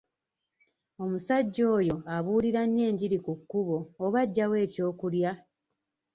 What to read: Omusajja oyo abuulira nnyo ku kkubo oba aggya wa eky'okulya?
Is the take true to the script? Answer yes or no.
no